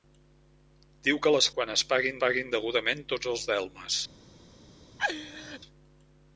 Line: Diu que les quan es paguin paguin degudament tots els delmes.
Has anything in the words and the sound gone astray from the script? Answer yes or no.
yes